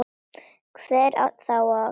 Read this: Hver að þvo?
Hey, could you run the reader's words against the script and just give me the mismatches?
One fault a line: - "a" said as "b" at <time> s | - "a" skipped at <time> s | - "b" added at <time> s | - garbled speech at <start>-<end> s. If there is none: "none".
none